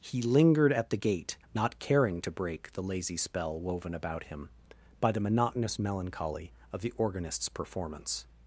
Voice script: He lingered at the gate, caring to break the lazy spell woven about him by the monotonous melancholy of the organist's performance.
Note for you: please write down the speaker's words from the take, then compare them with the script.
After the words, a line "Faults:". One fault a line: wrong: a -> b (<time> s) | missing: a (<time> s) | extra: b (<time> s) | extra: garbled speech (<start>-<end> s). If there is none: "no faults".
He lingered at the gate, not caring to break the lazy spell woven about him by the monotonous melancholy of the organist's performance.
Faults:
extra: not (1.6 s)